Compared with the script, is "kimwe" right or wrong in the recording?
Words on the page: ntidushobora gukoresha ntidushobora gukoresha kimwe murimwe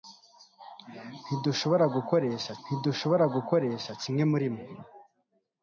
right